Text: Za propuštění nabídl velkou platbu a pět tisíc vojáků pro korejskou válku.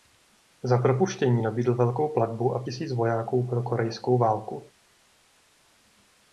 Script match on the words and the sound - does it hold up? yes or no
no